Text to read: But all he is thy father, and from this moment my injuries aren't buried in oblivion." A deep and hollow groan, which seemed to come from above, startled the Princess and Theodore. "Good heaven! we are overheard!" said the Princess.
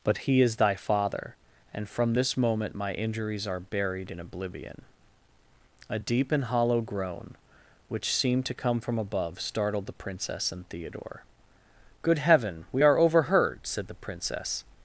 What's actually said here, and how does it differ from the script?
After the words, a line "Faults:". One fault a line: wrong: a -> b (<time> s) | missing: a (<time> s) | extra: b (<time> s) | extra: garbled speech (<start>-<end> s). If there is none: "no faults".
But he is thy father, and from this moment my injuries are buried in oblivion." A deep and hollow groan, which seemed to come from above, startled the Princess and Theodore. "Good heaven! we are overheard!" said the Princess.
Faults:
missing: all (0.2 s)
wrong: aren't -> are (3.5 s)